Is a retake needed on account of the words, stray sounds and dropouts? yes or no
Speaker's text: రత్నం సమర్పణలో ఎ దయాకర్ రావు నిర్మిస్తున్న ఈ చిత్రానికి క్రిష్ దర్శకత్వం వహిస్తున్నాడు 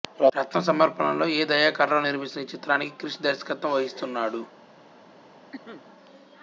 yes